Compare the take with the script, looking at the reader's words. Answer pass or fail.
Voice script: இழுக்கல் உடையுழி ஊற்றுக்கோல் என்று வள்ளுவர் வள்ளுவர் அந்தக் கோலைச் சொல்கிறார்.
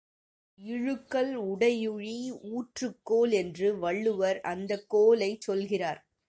fail